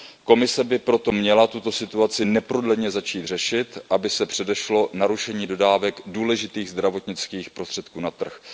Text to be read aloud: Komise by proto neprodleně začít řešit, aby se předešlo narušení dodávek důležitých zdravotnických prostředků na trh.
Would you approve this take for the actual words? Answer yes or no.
no